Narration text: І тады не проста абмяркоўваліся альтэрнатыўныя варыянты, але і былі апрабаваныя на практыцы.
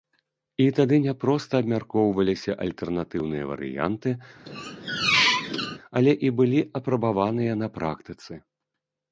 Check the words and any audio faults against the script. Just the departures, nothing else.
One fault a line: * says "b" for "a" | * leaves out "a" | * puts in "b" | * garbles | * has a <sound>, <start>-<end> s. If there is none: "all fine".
* has a squeak, 4.5-5.8 s